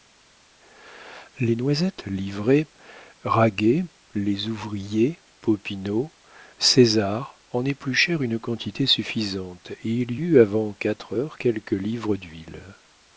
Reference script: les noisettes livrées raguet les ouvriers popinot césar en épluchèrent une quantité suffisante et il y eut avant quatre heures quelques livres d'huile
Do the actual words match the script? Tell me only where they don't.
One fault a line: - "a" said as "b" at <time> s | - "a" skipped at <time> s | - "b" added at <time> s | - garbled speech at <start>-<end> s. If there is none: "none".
none